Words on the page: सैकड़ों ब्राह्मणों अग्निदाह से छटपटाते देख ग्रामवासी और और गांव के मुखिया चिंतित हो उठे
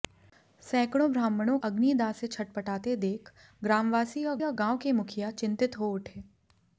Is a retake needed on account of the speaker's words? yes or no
no